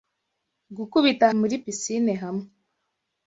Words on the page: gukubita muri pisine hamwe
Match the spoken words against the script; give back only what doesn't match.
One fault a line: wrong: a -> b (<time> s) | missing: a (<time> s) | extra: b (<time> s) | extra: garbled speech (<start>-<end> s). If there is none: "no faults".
no faults